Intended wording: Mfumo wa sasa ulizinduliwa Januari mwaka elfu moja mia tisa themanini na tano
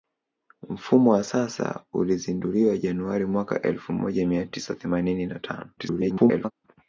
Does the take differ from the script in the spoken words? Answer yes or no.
yes